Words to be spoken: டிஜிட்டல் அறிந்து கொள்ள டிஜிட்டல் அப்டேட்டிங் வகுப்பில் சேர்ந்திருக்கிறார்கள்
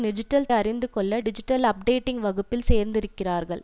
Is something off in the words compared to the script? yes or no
no